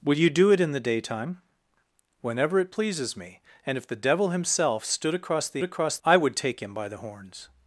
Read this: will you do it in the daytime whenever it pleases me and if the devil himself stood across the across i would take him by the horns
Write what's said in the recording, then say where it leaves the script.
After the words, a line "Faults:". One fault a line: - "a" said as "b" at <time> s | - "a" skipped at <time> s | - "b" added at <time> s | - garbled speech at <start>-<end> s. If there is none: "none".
will you do it in the daytime whenever it pleases me and if the devil himself stood across the across i would take him by the horns
Faults:
none